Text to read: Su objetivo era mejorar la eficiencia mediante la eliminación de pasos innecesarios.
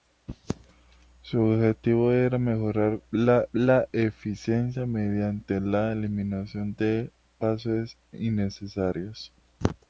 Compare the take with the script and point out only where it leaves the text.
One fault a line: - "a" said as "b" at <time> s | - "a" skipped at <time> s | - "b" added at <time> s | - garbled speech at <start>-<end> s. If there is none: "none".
- "la" added at 3.5 s